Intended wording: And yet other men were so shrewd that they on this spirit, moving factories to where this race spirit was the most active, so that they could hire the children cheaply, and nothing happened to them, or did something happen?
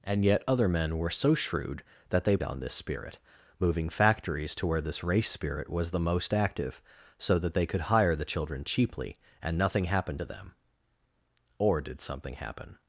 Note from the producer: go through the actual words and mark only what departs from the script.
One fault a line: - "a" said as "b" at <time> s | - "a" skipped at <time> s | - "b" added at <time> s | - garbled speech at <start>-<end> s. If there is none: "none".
none